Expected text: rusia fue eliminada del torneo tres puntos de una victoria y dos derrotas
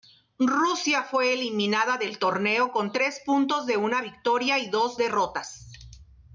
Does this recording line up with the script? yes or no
no